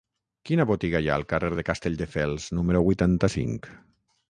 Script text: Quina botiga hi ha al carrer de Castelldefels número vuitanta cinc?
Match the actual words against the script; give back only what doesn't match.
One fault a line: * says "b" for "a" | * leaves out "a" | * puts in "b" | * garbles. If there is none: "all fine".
all fine